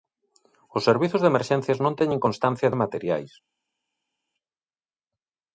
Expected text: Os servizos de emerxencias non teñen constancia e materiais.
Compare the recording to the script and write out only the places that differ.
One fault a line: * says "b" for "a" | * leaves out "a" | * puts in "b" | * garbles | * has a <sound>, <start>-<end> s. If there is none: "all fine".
all fine